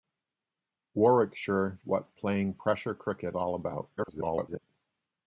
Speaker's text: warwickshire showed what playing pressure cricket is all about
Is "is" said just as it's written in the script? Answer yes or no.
no